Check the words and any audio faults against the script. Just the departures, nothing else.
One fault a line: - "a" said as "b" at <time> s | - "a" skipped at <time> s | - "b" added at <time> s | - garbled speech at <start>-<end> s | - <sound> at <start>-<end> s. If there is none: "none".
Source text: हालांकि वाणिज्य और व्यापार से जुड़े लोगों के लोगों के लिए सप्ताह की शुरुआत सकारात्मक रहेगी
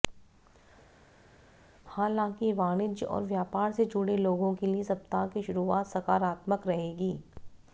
- "लोगों के" skipped at 4.7 s